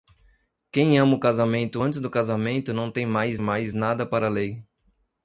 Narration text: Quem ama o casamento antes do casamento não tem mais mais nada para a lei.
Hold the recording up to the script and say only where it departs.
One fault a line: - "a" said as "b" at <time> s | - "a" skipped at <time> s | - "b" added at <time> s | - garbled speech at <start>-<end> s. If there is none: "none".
none